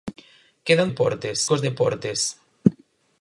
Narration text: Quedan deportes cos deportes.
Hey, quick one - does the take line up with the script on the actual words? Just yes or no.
yes